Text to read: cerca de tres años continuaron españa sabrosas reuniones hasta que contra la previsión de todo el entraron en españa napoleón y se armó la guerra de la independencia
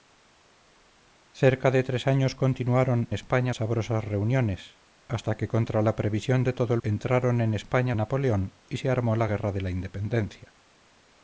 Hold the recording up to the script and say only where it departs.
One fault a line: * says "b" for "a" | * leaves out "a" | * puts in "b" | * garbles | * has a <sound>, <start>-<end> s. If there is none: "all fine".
all fine